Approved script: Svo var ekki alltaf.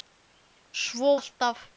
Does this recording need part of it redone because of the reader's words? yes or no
yes